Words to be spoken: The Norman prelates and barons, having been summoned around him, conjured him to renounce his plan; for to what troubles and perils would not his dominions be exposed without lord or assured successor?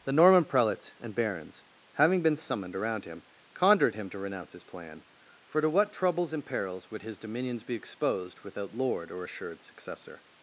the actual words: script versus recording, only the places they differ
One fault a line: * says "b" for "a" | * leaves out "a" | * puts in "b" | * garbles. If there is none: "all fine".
* leaves out "not"